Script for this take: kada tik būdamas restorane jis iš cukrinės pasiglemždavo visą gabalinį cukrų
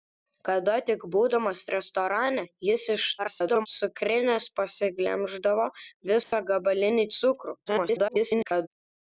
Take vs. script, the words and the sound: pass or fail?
fail